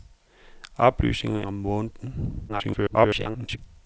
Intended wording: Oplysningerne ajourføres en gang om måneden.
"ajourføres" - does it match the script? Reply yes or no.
no